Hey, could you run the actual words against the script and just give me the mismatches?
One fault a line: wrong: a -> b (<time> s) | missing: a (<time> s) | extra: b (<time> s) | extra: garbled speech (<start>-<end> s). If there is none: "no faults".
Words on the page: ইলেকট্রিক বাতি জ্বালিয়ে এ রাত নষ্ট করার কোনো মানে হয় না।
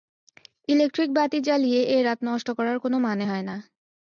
no faults